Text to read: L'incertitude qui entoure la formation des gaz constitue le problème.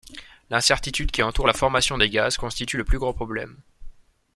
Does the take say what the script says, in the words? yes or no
no